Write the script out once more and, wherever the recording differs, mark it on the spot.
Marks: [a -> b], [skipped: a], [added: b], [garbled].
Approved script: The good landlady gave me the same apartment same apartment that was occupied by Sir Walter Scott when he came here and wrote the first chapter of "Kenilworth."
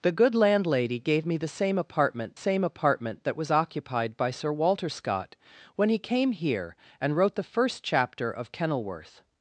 The good landlady gave me the same apartment same apartment that was occupied by Sir Walter Scott when he came here and wrote the first chapter of "Kenilworth."